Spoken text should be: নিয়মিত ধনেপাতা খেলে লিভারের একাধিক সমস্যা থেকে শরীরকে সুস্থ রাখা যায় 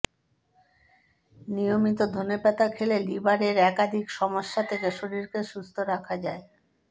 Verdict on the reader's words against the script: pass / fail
pass